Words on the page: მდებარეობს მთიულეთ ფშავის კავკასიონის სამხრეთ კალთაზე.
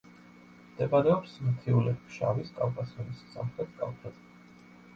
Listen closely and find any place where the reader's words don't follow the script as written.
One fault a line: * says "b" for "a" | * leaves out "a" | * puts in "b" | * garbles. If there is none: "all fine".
all fine